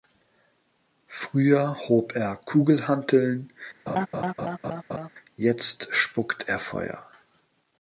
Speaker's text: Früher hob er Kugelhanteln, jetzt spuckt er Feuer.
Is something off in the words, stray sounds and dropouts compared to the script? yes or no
yes